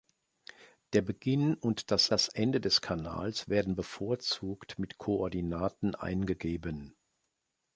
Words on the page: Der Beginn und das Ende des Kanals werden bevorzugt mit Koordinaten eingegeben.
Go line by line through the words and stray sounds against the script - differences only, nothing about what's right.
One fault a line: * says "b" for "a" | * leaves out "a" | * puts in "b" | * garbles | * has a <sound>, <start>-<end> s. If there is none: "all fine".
* puts in "das"